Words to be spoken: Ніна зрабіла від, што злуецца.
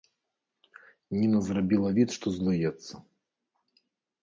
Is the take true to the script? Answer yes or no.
yes